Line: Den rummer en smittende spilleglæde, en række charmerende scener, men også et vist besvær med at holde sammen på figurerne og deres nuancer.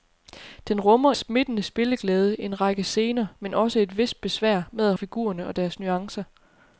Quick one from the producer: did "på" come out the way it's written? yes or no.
no